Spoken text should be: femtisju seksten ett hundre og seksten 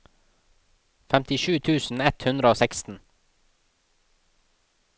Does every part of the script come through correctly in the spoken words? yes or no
no